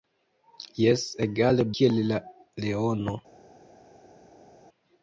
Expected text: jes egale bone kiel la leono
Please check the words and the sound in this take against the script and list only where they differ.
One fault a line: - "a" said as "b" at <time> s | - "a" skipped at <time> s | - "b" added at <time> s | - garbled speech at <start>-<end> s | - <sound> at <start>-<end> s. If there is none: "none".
- "bone" skipped at 1.7 s